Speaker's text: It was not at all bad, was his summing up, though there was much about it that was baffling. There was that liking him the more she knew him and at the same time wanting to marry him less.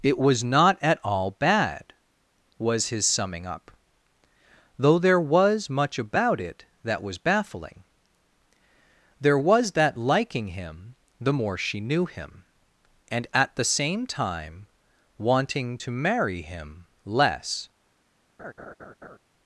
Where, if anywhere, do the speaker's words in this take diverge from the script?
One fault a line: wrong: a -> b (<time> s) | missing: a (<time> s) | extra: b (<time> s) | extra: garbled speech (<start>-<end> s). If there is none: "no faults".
no faults